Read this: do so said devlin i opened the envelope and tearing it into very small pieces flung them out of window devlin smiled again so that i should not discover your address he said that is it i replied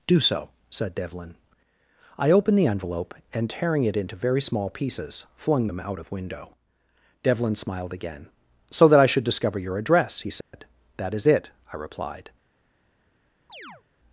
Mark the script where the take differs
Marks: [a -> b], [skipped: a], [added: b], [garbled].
do so said devlin i opened the envelope and tearing it into very small pieces flung them out of window devlin smiled again so that i should [skipped: not] discover your address he said that is it i replied